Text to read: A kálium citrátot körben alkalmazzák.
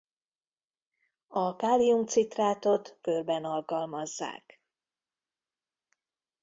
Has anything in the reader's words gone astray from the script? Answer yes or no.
no